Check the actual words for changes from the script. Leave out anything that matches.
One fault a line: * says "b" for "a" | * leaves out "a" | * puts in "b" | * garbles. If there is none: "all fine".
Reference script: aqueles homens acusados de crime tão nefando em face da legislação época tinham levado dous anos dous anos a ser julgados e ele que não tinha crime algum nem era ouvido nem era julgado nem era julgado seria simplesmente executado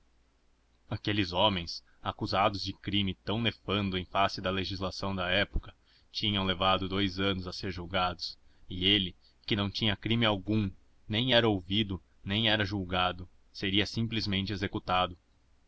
* puts in "da"
* leaves out "dous anos"
* leaves out "nem era julgado"